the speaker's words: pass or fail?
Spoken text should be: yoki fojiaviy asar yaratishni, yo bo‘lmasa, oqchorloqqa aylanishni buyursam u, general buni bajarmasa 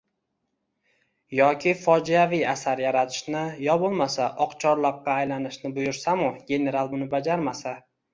pass